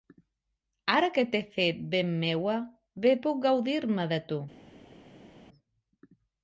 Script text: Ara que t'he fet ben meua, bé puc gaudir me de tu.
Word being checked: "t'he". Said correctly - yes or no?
yes